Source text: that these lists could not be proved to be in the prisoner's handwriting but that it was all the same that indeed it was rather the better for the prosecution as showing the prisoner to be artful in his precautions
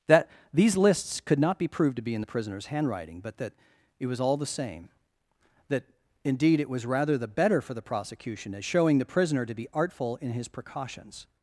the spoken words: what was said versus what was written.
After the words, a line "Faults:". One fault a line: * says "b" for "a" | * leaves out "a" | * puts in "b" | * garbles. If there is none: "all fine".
that these lists could not be proved to be in the prisoner's handwriting but that it was all the same that indeed it was rather the better for the prosecution as showing the prisoner to be artful in his precautions
Faults:
all fine